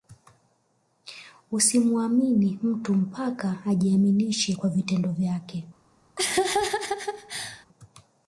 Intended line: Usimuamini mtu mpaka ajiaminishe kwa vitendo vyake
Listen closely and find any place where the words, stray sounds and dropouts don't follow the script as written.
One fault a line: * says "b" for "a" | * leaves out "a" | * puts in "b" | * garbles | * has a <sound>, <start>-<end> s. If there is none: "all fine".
* has a laugh, 6.2-7.7 s